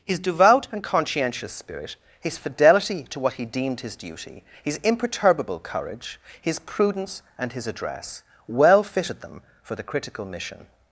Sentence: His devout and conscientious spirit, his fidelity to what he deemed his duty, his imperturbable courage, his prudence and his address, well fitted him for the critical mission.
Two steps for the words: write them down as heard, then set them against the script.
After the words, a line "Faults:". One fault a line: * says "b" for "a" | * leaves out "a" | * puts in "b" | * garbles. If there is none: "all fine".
His devout and conscientious spirit, his fidelity to what he deemed his duty, his imperturbable courage, his prudence and his address, well fitted them for the critical mission.
Faults:
* says "them" for "him"